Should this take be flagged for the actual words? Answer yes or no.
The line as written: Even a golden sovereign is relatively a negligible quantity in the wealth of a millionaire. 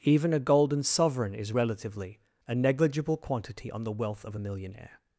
yes